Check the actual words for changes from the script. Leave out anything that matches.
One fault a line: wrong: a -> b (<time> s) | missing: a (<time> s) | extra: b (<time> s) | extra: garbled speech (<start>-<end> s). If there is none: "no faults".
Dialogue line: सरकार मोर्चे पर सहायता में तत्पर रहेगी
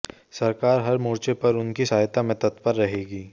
extra: हर (0.8 s)
extra: उनकी (1.6 s)